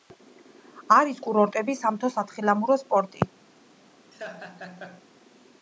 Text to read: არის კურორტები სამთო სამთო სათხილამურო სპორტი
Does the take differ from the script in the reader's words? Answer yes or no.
yes